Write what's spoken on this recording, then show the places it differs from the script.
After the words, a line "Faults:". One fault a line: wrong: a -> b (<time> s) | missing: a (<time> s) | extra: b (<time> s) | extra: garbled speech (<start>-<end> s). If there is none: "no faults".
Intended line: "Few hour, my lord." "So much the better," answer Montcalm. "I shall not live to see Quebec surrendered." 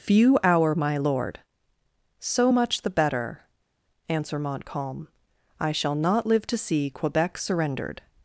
"Few hour, my lord." "So much the better," answer Montcalm. "I shall not live to see Quebec surrendered."
Faults:
no faults